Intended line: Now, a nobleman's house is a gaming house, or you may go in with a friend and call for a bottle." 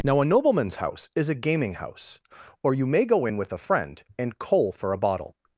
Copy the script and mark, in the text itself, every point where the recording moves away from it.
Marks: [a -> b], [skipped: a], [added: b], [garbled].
Now, a nobleman's house is a gaming house, or you may go in with a friend and [call -> coal] for a bottle."